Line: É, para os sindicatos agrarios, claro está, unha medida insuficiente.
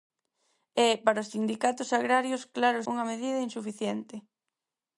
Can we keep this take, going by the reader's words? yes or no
no